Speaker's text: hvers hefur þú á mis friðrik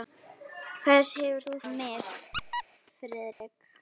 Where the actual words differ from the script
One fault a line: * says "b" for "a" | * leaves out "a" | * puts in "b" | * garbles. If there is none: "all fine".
all fine